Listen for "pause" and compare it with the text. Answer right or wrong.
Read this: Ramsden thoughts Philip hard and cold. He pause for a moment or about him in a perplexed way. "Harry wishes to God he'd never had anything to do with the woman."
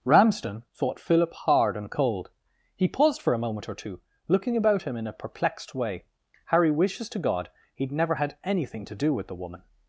wrong